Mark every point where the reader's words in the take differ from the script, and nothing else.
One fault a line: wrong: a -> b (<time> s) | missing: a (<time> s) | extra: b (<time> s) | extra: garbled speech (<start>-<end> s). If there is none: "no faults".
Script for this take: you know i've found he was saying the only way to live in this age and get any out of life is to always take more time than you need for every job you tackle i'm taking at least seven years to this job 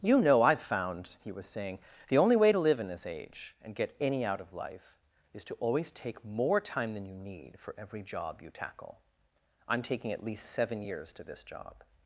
no faults